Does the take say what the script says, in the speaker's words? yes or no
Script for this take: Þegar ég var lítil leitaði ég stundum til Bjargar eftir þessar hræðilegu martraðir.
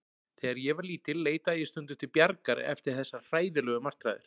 yes